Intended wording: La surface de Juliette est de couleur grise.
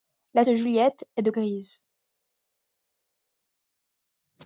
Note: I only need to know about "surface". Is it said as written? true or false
false